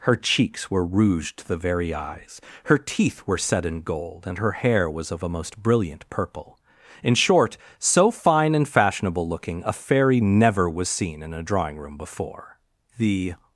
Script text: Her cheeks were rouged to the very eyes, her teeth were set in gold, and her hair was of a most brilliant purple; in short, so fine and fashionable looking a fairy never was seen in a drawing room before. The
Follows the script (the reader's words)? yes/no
yes